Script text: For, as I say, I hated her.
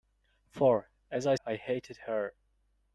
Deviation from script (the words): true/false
true